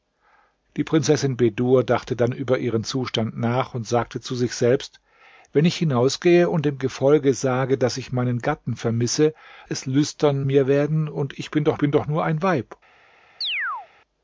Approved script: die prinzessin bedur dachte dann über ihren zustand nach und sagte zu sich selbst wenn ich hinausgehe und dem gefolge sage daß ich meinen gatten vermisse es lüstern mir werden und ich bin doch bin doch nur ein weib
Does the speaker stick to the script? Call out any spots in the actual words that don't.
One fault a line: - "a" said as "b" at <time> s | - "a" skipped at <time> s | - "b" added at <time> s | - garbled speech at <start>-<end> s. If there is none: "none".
none